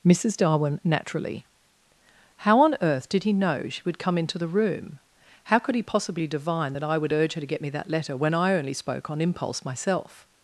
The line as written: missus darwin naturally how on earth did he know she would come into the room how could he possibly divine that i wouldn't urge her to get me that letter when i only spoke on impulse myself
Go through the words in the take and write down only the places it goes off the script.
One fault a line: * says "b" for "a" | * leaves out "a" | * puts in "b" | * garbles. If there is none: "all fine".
* says "would" for "wouldn't"